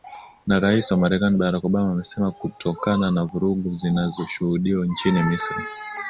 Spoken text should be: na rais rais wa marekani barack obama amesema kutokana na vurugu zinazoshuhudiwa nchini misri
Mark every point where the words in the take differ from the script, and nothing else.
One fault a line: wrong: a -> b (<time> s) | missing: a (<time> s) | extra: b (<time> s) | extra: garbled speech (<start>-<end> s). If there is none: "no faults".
missing: rais (0.9 s)